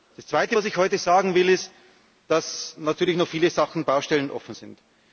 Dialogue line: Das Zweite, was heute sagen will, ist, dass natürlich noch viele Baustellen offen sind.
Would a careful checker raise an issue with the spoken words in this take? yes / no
yes